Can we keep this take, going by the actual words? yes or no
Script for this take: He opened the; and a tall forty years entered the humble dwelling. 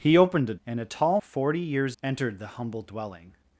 yes